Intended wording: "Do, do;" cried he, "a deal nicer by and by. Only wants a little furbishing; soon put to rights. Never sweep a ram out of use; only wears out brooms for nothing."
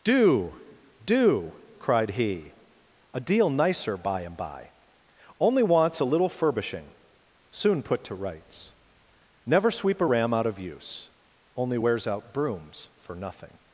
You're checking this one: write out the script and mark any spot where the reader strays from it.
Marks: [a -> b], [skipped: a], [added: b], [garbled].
"Do, do;" cried he, "a deal nicer by and by. Only wants a little furbishing; soon put to rights. Never sweep a ram out of use; only wears out brooms for nothing."